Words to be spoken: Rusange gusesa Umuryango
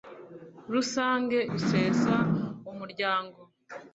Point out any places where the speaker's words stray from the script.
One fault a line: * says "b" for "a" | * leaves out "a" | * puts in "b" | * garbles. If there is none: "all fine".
all fine